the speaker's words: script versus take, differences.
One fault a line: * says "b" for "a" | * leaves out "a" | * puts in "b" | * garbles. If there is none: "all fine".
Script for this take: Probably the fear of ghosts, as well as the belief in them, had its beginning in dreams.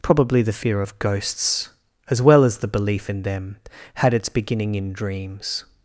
all fine